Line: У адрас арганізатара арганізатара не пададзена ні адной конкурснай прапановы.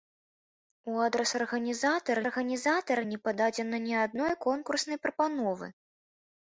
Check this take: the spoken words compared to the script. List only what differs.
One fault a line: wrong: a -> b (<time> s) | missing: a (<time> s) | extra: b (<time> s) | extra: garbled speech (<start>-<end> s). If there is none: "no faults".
no faults